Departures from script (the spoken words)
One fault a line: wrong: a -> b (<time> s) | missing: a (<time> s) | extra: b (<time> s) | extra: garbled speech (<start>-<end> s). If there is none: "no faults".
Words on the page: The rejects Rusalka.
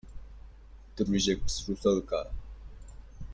no faults